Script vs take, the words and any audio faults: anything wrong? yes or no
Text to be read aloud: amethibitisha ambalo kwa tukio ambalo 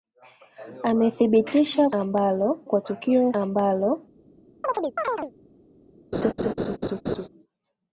yes